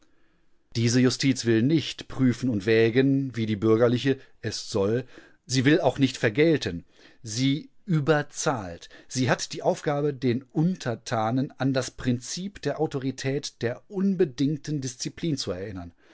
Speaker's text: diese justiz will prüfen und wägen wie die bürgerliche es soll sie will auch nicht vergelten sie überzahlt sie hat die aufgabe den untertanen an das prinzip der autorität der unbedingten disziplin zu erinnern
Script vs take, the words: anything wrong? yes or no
yes